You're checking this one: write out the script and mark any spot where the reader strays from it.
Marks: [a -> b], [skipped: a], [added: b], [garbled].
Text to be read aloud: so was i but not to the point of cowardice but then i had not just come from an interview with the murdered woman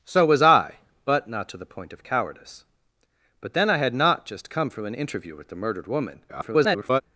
so was i but not to the point of cowardice but then i had not just come from an interview with the murdered woman [garbled]